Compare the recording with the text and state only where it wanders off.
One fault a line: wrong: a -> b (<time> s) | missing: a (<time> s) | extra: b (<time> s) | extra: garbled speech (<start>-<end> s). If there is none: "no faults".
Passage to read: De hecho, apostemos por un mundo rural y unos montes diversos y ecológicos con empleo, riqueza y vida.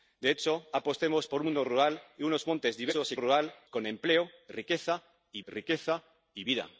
wrong: ecológicos -> rural (3.2 s)
extra: riqueza y (5.4 s)